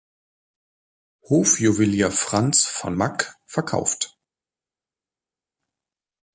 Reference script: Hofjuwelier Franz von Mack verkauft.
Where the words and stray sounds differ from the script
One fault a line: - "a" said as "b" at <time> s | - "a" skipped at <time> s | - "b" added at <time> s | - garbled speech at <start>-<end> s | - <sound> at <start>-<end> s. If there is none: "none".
none